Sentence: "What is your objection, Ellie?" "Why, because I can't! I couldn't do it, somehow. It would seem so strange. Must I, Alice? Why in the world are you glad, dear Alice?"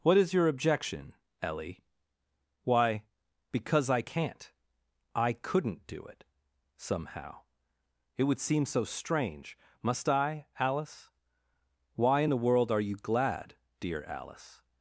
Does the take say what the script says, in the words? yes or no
yes